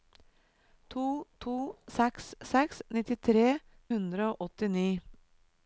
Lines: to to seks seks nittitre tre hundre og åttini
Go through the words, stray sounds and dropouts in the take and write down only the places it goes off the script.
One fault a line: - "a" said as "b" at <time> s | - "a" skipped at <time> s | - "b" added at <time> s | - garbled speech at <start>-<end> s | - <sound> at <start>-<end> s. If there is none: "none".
- "tre" skipped at 3.5 s